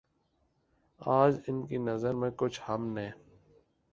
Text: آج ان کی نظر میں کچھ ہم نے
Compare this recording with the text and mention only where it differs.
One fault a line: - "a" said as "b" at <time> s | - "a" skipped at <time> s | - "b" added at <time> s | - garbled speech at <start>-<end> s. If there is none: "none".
none